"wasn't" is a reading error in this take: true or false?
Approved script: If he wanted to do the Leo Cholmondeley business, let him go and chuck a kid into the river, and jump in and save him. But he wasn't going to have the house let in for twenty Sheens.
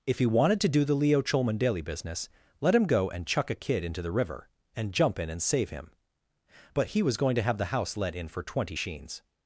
true